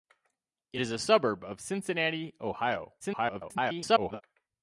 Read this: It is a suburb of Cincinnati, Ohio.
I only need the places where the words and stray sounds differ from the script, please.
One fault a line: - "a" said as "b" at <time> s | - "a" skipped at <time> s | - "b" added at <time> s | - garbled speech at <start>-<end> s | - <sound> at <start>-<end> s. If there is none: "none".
- garbled speech at 3.0-4.2 s